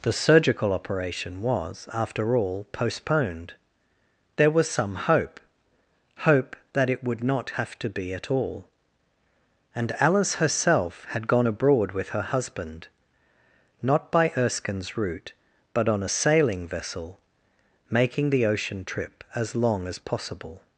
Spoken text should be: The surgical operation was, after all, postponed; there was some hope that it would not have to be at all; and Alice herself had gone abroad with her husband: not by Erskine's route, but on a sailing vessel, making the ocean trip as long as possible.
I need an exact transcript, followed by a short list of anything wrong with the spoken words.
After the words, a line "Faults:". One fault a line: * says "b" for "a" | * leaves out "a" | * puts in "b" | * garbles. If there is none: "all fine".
The surgical operation was, after all, postponed; there was some hope hope that it would not have to be at all; and Alice herself had gone abroad with her husband: not by Erskine's route, but on a sailing vessel, making the ocean trip as long as possible.
Faults:
* puts in "hope"